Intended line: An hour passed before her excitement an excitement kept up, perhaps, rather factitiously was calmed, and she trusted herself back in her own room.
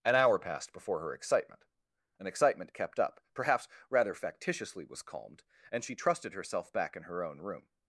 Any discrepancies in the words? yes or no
no